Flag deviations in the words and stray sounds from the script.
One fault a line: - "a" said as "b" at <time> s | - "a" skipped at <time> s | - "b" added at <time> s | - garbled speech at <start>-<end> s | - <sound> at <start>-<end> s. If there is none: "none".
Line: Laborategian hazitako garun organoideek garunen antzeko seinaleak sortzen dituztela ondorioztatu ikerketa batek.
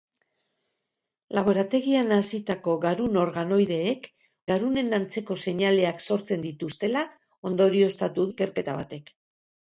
none